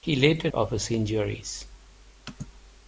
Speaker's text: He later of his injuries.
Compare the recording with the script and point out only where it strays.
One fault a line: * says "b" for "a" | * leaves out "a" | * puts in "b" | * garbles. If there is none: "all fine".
all fine